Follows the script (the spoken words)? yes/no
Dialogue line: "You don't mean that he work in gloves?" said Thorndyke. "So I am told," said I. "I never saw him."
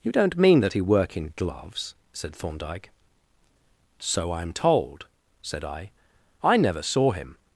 yes